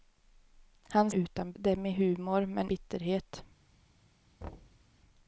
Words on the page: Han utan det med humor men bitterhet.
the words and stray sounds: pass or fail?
fail